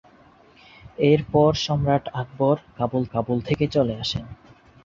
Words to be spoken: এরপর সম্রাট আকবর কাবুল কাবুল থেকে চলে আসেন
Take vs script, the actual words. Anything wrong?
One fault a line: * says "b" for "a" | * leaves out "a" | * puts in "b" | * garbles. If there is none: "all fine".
all fine